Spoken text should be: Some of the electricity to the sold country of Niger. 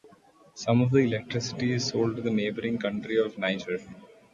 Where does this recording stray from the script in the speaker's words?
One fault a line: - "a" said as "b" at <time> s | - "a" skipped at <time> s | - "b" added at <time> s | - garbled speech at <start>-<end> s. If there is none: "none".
- "is sold" added at 1.7 s
- "sold" said as "neighbouring" at 2.3 s